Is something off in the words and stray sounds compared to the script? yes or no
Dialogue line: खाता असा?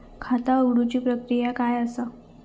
yes